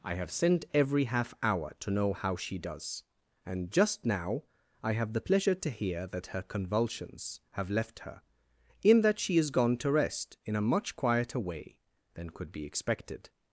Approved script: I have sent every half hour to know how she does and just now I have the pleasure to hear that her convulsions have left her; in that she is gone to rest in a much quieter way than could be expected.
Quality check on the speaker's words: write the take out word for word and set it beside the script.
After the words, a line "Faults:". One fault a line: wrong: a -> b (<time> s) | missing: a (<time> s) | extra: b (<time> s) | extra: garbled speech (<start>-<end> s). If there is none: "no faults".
I have sent every half hour to know how she does and just now I have the pleasure to hear that her convulsions have left her; in that she is gone to rest in a much quieter way than could be expected.
Faults:
no faults